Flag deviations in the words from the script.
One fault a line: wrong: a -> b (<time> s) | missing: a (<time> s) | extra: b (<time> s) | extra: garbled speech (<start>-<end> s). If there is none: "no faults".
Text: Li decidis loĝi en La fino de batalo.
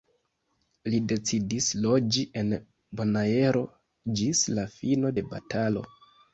extra: Bonaero ĝis (3.0 s)